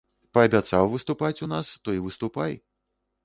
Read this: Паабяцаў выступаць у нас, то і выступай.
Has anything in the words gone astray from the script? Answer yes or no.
no